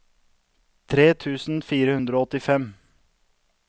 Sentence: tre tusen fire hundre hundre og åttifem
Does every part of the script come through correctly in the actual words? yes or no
no